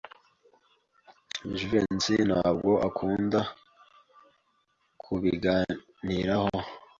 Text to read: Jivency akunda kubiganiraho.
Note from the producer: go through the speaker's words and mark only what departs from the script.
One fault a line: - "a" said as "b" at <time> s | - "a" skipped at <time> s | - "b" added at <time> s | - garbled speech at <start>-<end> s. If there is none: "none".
- "ntabwo" added at 2.3 s